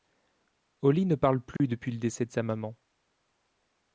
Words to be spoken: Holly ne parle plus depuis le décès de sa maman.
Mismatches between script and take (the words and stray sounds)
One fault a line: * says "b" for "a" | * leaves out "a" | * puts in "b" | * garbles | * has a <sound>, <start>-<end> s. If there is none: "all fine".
* has a dropout, 1.6-1.6 s